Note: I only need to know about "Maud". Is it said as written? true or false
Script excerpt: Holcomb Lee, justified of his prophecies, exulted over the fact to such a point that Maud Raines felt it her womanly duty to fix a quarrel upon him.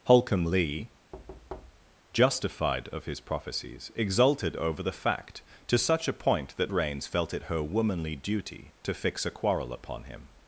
false